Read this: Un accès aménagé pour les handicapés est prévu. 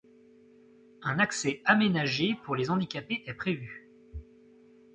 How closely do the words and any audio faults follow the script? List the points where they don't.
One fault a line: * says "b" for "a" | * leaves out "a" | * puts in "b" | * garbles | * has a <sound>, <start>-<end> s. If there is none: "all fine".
all fine